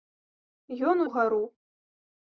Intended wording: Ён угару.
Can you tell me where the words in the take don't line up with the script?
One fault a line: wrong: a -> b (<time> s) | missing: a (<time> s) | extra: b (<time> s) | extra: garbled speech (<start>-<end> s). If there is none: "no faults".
no faults